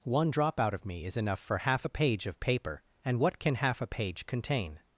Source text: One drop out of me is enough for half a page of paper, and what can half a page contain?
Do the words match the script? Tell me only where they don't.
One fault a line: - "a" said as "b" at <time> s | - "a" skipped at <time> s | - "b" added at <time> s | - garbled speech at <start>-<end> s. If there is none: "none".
none